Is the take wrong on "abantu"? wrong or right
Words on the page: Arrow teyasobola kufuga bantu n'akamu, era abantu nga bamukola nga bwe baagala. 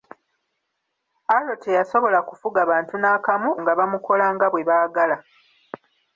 wrong